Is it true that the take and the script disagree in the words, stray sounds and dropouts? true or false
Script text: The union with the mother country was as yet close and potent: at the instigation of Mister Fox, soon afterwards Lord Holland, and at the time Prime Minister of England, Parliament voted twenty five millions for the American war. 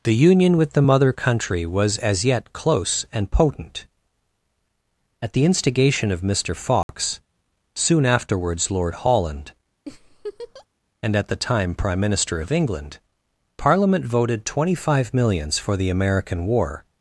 true